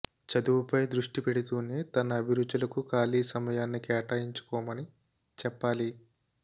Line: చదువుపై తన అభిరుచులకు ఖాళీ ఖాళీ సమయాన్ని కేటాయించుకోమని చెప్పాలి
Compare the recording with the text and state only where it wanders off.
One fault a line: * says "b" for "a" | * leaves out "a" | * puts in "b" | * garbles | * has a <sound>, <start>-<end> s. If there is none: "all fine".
* puts in "దృష్టి పెడుతూనే"
* leaves out "ఖాళీ"